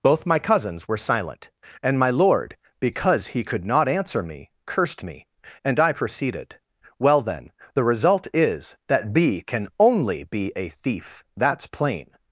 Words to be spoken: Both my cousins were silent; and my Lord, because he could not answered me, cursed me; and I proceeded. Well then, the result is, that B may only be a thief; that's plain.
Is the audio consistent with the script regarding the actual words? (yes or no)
no